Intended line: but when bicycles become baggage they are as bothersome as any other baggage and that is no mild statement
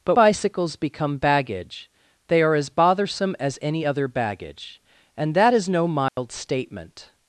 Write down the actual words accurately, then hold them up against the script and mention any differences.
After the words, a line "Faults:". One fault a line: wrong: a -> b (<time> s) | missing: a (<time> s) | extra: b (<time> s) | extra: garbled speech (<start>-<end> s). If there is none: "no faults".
but bicycles become baggage they are as bothersome as any other baggage and that is no mild statement
Faults:
missing: when (0.2 s)